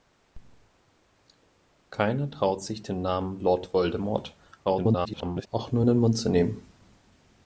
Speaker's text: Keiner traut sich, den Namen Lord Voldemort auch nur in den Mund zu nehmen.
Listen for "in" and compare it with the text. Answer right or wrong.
right